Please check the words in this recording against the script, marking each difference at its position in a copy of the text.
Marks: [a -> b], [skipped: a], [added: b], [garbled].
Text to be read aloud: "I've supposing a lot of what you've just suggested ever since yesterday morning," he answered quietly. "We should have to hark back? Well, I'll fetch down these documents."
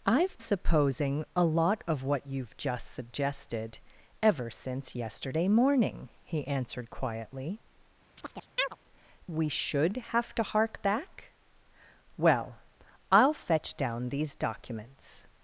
"I've supposing a lot of what you've just suggested ever since yesterday morning," he answered quietly. "We should have to hark back? Well, I'll fetch down these documents."